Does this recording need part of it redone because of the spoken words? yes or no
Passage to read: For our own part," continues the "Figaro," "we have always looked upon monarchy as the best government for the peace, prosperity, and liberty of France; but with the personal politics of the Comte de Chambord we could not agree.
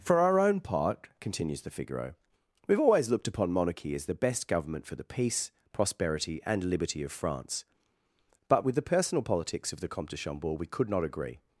no